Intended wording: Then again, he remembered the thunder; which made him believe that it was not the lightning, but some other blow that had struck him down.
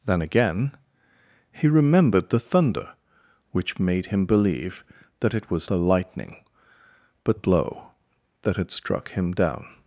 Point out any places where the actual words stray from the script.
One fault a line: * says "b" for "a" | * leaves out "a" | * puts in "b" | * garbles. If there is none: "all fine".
* leaves out "not"
* leaves out "some other"